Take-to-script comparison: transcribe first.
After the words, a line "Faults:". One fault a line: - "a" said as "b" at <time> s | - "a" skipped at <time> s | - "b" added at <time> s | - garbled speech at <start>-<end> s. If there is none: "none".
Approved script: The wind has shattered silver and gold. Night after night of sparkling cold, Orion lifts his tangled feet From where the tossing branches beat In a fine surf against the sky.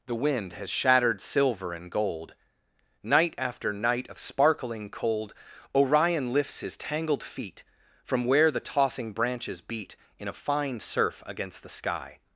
The wind has shattered silver and gold. Night after night of sparkling cold, Orion lifts his tangled feet From where the tossing branches beat In a fine surf against the sky.
Faults:
none